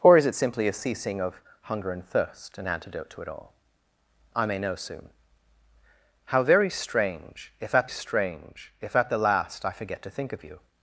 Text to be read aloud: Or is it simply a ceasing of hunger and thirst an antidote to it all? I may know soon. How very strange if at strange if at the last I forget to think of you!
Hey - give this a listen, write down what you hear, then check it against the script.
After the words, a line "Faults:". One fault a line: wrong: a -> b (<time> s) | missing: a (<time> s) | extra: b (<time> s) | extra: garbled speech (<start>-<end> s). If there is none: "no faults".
Or is it simply a ceasing of hunger and thirst an antidote to it all? I may know soon. How very strange if at strange if at the last I forget to think of you!
Faults:
no faults